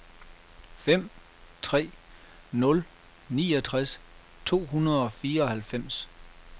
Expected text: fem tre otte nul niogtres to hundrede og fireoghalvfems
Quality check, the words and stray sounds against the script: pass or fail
fail